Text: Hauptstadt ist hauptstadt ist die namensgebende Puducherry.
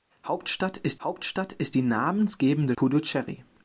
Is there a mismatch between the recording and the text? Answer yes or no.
no